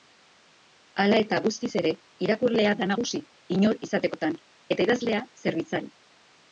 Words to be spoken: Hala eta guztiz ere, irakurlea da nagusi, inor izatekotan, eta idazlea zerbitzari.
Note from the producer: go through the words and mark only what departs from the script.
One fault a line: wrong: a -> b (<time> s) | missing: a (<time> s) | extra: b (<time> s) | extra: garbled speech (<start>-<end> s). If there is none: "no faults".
no faults